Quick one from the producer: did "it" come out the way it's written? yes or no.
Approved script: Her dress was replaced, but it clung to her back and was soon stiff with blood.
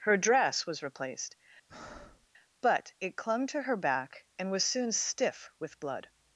yes